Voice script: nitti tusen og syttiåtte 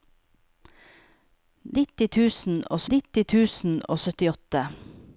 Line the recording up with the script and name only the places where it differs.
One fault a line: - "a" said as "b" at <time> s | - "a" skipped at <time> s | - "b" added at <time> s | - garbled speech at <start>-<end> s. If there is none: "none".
- "nitti tusen og" added at 2.9 s